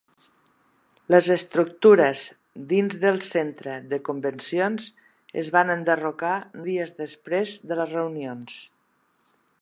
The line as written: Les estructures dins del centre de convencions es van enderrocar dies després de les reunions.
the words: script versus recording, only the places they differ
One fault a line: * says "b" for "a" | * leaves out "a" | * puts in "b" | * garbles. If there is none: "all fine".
all fine